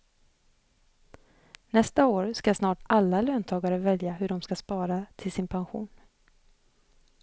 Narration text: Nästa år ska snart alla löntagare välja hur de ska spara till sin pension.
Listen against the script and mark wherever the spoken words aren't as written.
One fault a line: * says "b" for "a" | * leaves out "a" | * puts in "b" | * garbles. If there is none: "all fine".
all fine